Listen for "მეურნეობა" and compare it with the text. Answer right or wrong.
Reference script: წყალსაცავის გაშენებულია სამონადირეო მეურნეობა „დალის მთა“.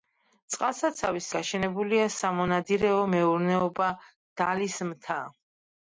right